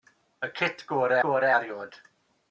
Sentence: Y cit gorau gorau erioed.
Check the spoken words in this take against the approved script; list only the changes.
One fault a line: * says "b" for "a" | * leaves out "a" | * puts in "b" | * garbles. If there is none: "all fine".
all fine